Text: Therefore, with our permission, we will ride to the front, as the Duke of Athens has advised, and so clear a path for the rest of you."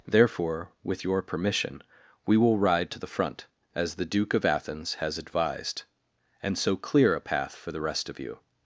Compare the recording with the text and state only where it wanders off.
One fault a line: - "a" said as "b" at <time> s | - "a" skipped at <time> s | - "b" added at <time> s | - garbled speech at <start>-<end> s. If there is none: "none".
- "our" said as "your" at 1.0 s